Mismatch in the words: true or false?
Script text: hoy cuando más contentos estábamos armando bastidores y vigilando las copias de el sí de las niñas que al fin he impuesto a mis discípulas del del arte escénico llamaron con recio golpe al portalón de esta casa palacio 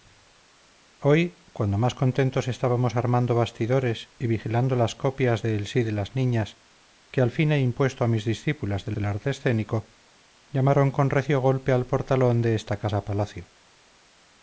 false